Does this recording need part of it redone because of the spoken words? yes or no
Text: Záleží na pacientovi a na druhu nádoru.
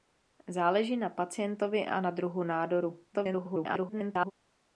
yes